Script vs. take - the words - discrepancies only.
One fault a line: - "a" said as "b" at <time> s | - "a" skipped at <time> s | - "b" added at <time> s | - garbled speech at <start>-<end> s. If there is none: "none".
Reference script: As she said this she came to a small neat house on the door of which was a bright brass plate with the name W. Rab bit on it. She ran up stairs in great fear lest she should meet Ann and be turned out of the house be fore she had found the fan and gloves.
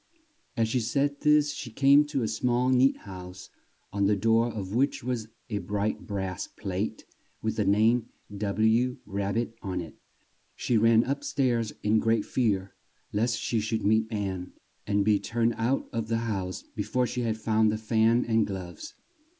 none